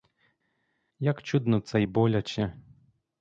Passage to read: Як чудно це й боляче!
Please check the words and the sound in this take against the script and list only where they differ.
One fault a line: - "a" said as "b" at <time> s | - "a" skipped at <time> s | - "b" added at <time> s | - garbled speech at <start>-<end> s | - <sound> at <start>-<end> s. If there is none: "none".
none